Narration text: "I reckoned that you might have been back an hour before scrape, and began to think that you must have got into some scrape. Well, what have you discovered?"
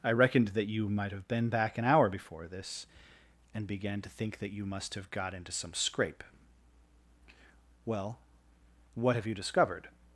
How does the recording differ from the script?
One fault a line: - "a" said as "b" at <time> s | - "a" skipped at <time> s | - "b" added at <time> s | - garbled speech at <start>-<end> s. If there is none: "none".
- "scrape" said as "this" at 2.5 s